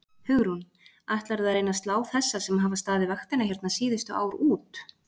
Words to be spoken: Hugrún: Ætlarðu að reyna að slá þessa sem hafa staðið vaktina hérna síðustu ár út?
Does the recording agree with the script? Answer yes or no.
yes